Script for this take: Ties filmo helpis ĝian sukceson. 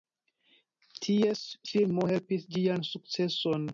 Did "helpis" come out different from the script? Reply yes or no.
no